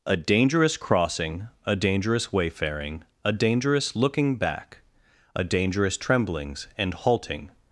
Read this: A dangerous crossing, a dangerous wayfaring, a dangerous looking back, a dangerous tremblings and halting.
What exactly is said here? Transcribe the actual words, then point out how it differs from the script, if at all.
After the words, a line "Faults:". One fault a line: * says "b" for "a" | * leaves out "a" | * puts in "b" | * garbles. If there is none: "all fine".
A dangerous crossing, a dangerous wayfaring, a dangerous looking back, a dangerous tremblings and halting.
Faults:
all fine